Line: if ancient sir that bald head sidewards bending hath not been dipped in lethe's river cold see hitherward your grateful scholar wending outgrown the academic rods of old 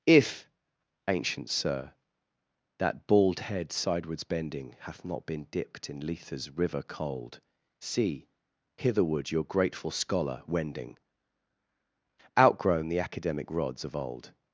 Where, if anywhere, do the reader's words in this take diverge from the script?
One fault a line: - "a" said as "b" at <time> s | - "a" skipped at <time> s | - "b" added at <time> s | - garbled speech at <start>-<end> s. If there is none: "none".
none